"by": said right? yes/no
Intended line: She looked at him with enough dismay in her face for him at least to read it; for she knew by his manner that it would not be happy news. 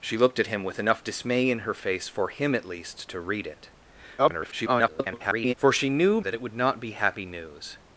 no